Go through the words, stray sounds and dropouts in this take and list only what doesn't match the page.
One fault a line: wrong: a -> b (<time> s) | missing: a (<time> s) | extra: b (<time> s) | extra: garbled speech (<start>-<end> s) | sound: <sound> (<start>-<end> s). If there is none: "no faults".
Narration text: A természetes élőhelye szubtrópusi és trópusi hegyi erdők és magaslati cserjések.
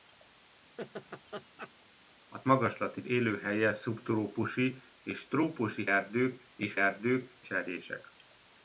sound: laugh (0.8-1.7 s)
wrong: természetes -> magaslati (2.4 s)
missing: hegyi (5.9 s)
wrong: magaslati -> erdők (6.7 s)